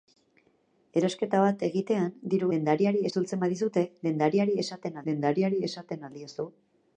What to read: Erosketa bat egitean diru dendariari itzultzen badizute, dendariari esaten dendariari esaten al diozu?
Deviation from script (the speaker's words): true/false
false